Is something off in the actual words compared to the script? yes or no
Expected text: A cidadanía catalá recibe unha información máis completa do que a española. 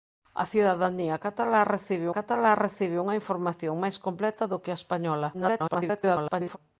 yes